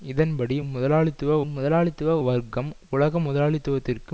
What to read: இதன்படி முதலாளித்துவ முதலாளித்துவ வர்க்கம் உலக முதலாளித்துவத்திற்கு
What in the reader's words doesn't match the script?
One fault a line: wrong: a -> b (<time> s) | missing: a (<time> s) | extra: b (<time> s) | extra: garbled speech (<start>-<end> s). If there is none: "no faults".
no faults